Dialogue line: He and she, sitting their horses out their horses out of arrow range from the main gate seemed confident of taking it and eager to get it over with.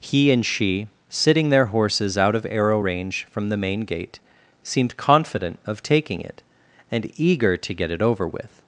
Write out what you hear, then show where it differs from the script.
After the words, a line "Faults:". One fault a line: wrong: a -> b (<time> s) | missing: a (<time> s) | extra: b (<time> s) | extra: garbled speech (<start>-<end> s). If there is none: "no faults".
He and she, sitting their horses out of arrow range from the main gate seemed confident of taking it and eager to get it over with.
Faults:
missing: their horses out (2.3 s)